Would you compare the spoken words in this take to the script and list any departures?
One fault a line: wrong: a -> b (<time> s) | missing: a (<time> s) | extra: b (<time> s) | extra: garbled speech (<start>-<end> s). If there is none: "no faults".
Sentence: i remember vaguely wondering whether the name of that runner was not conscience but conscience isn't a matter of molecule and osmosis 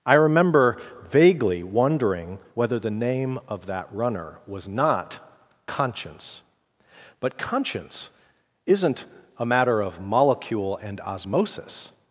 no faults